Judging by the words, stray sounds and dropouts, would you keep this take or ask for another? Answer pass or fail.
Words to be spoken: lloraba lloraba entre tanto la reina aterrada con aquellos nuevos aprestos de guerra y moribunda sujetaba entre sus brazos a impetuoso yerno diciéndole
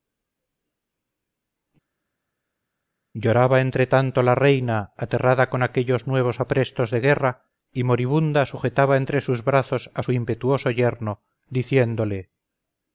fail